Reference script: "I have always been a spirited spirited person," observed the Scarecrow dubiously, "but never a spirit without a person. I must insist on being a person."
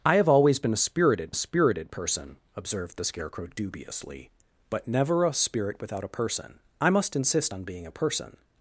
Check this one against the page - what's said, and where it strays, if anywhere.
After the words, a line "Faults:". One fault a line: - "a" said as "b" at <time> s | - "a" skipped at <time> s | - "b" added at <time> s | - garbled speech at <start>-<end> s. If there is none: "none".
"I have always been a spirited spirited person," observed the Scarecrow dubiously, "but never a spirit without a person. I must insist on being a person."
Faults:
none